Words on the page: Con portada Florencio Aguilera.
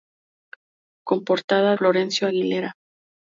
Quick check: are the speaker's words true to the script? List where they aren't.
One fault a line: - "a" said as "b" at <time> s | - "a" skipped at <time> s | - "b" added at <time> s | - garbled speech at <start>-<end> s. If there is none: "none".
none